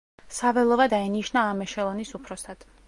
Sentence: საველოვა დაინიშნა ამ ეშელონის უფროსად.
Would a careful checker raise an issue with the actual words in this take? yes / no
no